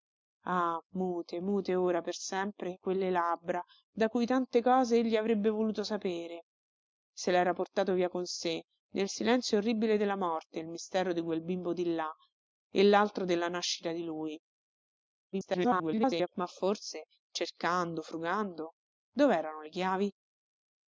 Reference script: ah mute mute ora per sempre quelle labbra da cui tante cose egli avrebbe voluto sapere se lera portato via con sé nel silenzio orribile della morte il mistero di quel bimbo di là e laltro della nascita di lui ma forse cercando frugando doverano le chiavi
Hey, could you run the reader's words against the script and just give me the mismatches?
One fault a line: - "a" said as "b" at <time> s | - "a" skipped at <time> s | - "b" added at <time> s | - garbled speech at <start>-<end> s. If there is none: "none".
- garbled speech at 15.3-16.3 s